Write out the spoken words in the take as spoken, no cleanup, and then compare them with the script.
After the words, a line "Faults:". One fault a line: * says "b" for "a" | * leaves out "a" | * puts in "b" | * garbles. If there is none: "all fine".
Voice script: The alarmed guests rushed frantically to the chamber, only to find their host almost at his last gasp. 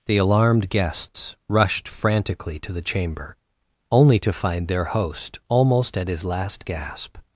The alarmed guests rushed frantically to the chamber, only to find their host almost at his last gasp.
Faults:
all fine